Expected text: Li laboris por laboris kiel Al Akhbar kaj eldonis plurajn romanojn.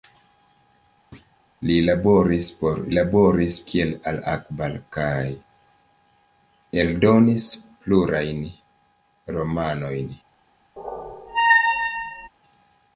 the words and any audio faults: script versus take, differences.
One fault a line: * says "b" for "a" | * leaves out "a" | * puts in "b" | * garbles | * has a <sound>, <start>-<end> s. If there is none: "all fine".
* has a thud, 1.1-1.4 s
* has a squeak, 10.8-12.3 s